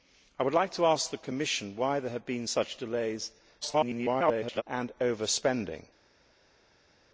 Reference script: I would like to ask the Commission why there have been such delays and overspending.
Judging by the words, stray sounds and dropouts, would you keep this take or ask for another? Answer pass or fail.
fail